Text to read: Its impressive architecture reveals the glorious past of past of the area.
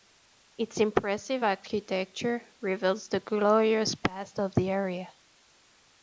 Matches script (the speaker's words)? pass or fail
fail